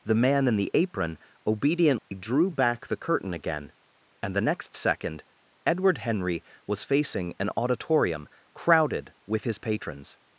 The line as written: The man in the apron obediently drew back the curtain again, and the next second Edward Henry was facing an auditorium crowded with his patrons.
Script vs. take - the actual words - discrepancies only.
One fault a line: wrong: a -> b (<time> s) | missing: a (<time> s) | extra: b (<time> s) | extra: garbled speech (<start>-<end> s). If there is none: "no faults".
no faults